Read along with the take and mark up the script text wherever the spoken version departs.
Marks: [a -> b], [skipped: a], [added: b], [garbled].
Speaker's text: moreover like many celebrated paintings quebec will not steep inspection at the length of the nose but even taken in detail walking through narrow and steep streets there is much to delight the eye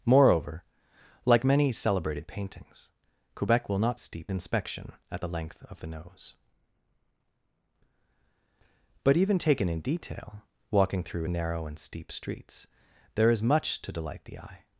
moreover like many celebrated paintings quebec will not steep inspection at the length of the nose but even taken in detail walking through narrow and steep streets there is much to delight the eye